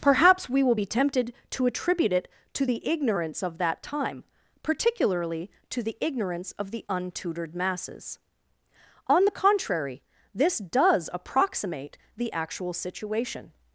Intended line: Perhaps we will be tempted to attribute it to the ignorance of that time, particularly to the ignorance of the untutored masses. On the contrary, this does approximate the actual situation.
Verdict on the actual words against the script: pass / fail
pass